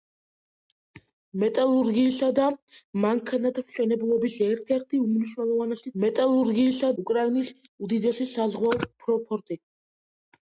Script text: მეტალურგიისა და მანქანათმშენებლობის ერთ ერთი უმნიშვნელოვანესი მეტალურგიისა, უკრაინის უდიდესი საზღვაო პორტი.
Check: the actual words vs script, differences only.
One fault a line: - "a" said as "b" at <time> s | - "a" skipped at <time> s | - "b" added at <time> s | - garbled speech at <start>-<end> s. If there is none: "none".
none